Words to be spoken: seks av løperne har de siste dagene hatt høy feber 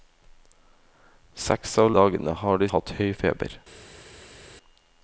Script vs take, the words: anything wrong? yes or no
yes